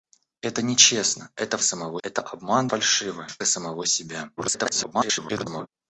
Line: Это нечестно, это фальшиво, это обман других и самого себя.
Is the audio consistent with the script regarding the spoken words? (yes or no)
no